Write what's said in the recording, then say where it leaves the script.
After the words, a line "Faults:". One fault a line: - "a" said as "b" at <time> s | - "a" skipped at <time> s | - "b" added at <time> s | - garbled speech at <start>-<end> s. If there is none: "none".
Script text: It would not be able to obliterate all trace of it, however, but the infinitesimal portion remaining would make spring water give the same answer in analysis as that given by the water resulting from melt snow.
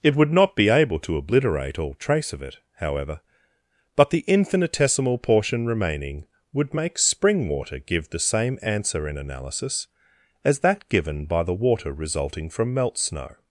It would not be able to obliterate all trace of it, however, but the infinitesimal portion remaining would make spring water give the same answer in analysis as that given by the water resulting from melt snow.
Faults:
none